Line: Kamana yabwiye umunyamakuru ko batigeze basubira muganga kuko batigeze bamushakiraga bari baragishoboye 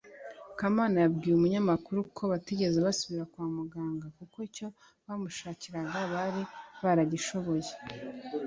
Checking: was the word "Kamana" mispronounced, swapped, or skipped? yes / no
no